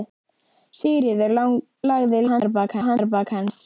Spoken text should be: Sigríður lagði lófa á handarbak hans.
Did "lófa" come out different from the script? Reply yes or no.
yes